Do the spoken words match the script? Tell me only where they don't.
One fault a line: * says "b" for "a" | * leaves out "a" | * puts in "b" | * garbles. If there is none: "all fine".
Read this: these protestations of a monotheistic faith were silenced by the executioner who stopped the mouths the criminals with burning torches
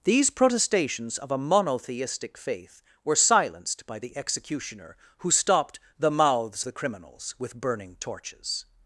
all fine